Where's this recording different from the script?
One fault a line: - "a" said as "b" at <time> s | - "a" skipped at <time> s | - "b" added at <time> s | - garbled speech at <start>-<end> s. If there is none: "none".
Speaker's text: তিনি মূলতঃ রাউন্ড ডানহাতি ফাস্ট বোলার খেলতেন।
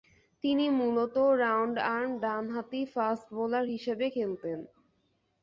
- "আর্ম" added at 1.9 s
- "হিসেবে" added at 3.7 s